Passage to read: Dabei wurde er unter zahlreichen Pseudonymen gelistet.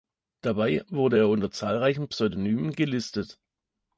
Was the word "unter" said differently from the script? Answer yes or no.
no